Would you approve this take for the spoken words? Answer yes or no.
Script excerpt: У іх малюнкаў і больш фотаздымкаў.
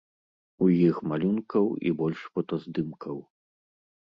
yes